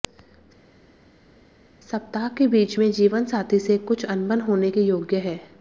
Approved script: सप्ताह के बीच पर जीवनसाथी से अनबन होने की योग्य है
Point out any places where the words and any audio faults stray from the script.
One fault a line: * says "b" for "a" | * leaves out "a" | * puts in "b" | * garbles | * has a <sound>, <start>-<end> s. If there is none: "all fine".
* says "में" for "पर"
* puts in "कुछ"
* says "के" for "की"